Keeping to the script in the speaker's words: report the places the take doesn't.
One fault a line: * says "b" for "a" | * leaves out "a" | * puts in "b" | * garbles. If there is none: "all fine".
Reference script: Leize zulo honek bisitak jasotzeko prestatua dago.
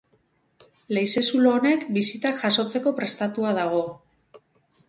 all fine